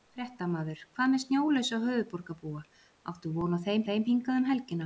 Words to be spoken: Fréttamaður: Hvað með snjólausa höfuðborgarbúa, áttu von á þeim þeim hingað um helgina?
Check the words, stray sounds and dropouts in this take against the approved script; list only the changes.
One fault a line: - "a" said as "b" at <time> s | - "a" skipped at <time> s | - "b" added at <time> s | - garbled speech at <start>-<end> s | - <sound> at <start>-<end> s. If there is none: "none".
none